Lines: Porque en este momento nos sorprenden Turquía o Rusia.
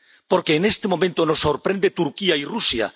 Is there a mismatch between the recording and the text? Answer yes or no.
yes